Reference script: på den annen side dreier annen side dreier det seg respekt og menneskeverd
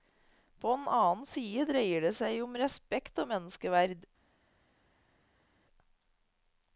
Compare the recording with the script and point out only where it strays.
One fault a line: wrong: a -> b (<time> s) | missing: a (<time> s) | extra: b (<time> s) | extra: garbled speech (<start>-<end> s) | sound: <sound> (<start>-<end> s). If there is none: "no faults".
missing: annen side dreier (2.1 s)
extra: om (2.4 s)